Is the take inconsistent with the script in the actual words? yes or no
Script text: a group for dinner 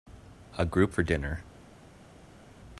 no